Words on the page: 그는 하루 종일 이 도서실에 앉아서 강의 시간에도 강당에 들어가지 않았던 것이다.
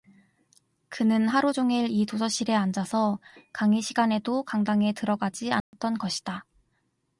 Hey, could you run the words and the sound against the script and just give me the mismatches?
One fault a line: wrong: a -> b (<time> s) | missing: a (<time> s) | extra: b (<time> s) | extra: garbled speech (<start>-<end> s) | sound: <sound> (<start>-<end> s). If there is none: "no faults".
sound: dropout (5.6-5.7 s)